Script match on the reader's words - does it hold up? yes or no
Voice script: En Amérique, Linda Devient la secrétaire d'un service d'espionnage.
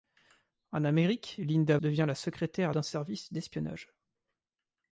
yes